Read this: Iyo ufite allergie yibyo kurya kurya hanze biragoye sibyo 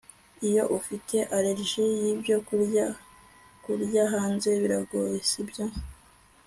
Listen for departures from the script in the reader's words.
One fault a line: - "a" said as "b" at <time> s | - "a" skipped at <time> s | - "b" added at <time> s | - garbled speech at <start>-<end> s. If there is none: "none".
none